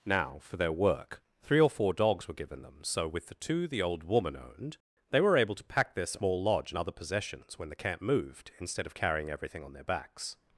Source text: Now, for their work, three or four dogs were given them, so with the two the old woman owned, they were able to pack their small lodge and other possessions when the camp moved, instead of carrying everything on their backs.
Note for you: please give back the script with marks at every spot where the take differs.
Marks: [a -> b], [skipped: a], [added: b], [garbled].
Now, for their work, three or four dogs were given them, so with the two the old woman owned, they were able to pack their small lodge and other possessions when the camp moved, instead of carrying everything on their backs.